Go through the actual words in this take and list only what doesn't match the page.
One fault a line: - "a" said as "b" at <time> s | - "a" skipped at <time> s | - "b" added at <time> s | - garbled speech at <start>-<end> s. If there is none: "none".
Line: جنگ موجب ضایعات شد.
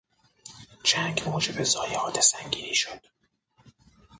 - "سنگینی" added at 2.2 s